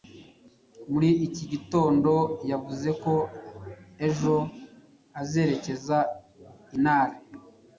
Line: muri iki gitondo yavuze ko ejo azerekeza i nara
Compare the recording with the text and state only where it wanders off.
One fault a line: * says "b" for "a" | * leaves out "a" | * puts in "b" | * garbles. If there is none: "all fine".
all fine